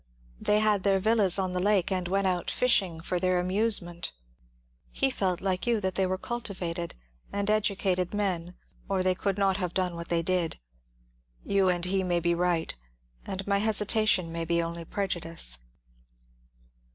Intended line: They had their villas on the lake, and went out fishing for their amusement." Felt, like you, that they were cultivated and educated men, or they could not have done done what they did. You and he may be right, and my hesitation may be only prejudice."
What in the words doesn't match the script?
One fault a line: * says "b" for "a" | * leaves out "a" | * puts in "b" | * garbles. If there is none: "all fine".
* puts in "He"
* leaves out "done"